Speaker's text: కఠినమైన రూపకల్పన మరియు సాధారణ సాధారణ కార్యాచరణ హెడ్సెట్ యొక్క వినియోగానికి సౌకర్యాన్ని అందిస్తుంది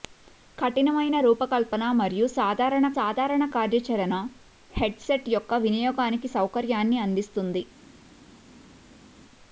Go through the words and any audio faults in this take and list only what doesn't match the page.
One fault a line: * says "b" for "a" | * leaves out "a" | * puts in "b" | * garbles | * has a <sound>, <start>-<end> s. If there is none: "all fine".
all fine